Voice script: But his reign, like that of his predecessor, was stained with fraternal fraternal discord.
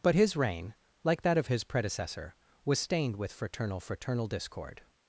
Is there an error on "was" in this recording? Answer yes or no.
no